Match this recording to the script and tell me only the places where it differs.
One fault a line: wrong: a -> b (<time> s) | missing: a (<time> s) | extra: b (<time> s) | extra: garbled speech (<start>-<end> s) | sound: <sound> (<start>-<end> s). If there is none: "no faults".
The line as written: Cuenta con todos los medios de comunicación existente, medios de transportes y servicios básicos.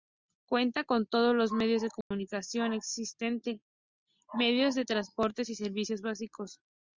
sound: dropout (2.0-2.1 s)